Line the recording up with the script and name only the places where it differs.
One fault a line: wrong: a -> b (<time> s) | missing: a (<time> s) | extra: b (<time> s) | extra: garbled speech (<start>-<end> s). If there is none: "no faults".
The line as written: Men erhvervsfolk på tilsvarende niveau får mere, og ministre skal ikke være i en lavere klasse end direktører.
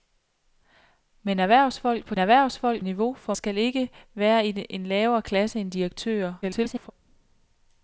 wrong: tilsvarende -> erhvervsfolk (2.2 s)
missing: mere og ministre (3.3 s)
extra: garbled speech (6.4-6.9 s)